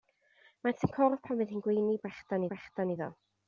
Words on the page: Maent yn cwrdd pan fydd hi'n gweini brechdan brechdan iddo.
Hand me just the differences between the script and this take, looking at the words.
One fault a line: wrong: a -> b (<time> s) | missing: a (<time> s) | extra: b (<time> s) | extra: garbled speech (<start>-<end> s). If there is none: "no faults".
no faults